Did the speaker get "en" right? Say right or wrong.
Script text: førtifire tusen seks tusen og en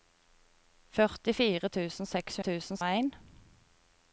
right